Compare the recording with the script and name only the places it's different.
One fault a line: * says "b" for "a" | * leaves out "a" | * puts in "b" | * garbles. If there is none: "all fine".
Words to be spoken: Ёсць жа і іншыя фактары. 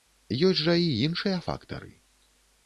all fine